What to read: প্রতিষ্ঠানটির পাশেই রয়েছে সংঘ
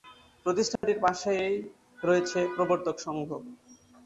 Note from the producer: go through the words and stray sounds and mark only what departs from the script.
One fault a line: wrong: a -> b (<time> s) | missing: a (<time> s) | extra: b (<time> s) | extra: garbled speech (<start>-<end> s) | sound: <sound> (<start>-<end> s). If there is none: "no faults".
sound: dropout (0.8-0.8 s)
extra: প্রবর্তক (2.5 s)